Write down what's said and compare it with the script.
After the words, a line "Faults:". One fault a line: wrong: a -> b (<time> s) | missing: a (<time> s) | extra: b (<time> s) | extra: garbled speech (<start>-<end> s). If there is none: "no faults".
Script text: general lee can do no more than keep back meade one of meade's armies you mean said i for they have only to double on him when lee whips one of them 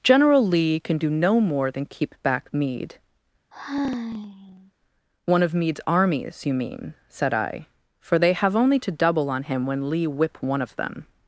general lee can do no more than keep back meade one of meade's armies you mean said i for they have only to double on him when lee whip one of them
Faults:
wrong: whips -> whip (10.1 s)